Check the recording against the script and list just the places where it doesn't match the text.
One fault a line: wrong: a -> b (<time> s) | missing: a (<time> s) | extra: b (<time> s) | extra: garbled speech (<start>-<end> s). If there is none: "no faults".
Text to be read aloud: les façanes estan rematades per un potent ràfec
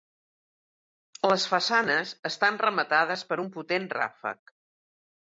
no faults